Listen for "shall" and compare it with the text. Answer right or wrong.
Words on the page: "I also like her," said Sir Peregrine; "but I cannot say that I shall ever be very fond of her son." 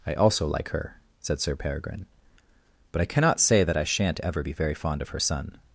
wrong